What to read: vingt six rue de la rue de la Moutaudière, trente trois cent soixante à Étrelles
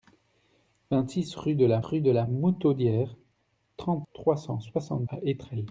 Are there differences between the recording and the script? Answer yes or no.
no